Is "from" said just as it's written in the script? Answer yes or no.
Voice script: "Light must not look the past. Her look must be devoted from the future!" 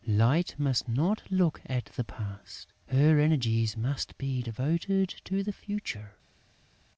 no